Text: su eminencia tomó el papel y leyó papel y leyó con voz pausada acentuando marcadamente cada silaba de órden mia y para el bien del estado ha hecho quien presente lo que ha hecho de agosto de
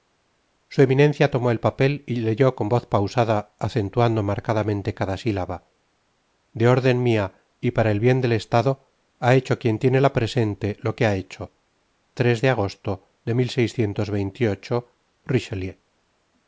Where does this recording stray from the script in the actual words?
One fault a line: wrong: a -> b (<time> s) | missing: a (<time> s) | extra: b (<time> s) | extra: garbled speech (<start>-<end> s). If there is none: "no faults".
missing: papel y leyó (2.5 s)
extra: tiene la (9.8 s)